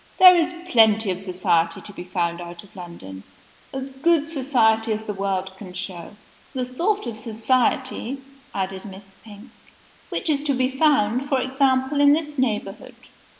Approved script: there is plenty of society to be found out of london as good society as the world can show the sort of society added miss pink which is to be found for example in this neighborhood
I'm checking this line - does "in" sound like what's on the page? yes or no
yes